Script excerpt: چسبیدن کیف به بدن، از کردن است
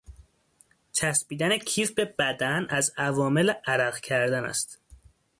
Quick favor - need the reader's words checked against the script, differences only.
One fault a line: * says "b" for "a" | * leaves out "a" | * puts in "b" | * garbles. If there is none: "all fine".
* puts in "عوامل عرق"